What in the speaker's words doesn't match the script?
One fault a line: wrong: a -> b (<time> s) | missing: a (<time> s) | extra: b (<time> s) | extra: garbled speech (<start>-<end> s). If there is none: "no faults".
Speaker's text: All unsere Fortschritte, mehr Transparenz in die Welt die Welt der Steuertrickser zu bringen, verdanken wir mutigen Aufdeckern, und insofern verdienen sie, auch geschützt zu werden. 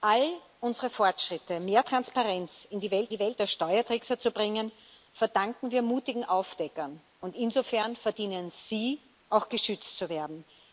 no faults